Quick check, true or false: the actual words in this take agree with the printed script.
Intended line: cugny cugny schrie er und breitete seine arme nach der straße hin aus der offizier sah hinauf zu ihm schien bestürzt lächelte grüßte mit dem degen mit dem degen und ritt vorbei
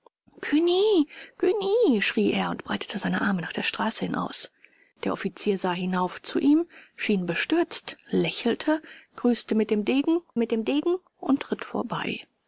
true